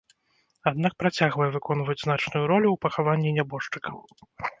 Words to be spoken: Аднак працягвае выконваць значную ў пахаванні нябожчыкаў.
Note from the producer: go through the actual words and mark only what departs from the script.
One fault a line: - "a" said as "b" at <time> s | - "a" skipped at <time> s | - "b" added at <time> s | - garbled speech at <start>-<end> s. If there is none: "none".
- "ролю" added at 2.5 s